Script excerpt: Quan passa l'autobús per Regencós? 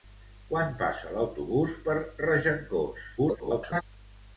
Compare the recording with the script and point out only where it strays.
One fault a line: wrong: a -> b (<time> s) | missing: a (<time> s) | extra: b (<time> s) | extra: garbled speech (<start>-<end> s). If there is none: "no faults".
extra: garbled speech (3.2-3.8 s)